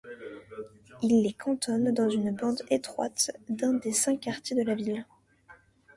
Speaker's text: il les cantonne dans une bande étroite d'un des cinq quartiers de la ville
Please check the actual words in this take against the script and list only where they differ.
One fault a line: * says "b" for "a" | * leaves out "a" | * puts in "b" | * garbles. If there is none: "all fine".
all fine